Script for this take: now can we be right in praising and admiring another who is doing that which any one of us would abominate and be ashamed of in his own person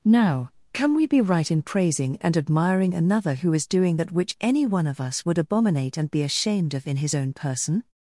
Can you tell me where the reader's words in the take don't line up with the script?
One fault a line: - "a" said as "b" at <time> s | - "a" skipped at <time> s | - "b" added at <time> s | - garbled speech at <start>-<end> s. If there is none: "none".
none